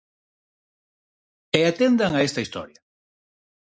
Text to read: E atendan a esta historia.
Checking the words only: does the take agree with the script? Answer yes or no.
yes